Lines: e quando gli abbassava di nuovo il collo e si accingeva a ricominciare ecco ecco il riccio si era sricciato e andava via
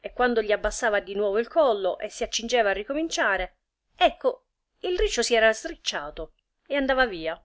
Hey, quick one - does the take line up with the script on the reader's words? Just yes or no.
no